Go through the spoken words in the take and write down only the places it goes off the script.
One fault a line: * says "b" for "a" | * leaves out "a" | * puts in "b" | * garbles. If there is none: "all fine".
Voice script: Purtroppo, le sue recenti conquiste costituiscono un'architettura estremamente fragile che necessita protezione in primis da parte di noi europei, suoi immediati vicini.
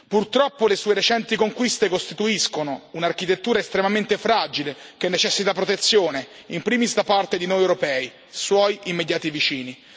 all fine